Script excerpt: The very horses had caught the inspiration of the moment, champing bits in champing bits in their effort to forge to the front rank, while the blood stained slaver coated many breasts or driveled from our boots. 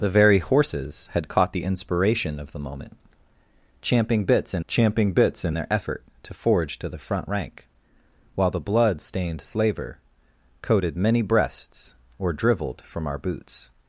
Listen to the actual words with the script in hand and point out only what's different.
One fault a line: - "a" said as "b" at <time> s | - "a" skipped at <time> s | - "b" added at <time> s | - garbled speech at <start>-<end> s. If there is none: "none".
none